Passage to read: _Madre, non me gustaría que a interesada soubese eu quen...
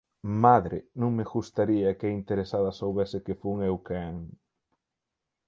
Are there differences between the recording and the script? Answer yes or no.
yes